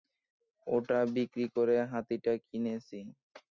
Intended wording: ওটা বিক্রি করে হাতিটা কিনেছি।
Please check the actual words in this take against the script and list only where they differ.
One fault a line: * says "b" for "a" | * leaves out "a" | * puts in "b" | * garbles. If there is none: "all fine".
all fine